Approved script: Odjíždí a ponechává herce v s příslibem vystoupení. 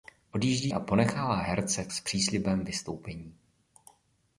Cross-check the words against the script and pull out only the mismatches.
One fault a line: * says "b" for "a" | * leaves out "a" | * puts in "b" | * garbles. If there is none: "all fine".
all fine